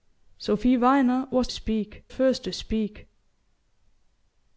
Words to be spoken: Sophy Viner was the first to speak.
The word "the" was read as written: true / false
false